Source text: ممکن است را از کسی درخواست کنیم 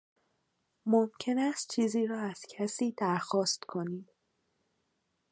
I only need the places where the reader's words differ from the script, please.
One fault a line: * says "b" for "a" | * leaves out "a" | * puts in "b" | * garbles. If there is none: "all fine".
* puts in "چیزی"